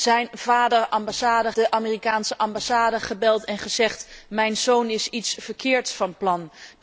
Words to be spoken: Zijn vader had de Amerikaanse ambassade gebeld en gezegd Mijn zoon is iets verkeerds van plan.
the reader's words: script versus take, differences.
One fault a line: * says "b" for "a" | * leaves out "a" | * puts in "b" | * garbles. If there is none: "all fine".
* says "ambassade" for "had"